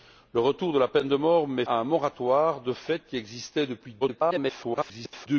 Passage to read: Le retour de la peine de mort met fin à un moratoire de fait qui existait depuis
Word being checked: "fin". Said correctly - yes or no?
no